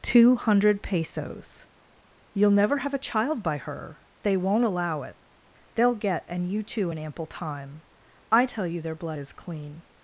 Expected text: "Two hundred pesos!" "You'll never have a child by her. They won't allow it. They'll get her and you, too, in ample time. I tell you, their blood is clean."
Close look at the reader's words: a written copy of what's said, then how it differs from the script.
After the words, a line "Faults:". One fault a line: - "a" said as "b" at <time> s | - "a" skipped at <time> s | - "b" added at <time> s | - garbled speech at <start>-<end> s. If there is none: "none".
"Two hundred pesos!" "You'll never have a child by her. They won't allow it. They'll get and you, too, in ample time. I tell you, their blood is clean."
Faults:
- "her" skipped at 6.2 s